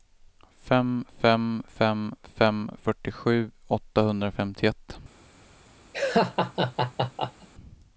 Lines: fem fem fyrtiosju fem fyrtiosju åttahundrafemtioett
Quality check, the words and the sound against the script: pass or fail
fail